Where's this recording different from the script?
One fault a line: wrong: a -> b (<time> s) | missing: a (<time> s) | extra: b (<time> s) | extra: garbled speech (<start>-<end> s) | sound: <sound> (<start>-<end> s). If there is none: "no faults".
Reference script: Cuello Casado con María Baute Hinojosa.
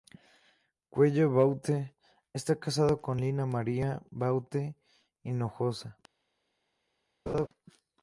extra: Baute está (1.3 s)
extra: Lina (3.2 s)
sound: laugh (7.3-7.5 s)